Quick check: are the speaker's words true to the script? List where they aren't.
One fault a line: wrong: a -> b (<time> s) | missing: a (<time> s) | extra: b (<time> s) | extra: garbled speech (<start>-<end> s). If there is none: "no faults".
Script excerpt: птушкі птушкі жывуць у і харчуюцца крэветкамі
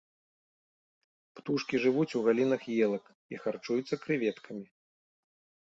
missing: птушкі (1.8 s)
extra: галінах елак (2.3 s)